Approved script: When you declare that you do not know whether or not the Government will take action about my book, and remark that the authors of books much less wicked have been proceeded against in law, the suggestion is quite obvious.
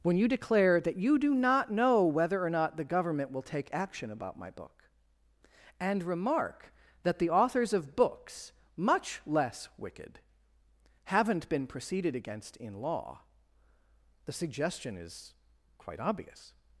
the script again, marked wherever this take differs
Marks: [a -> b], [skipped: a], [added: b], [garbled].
When you declare that you do not know whether or not the Government will take action about my book, and remark that the authors of books much less wicked [have -> haven't] been proceeded against in law, the suggestion is quite obvious.